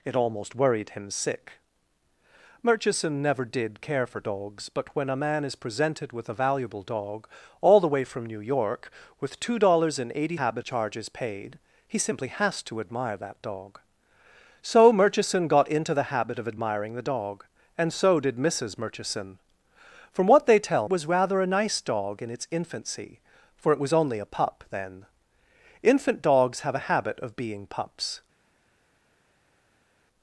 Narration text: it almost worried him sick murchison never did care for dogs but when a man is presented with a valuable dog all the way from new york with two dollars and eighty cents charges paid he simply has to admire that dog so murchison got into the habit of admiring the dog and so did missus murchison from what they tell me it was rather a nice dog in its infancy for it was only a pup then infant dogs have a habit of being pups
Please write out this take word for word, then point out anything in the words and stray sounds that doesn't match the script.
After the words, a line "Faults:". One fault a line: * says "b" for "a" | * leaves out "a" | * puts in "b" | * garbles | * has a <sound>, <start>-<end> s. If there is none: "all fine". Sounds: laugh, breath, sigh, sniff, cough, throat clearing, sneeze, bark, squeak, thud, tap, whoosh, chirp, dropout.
it almost worried him sick murchison never did care for dogs but when a man is presented with a valuable dog all the way from new york with two dollars and eighty habit charges paid he simply has to admire that dog so murchison got into the habit of admiring the dog and so did missus murchison from what they tell was rather a nice dog in its infancy for it was only a pup then infant dogs have a habit of being pups
Faults:
* says "habit" for "cents"
* leaves out "me it"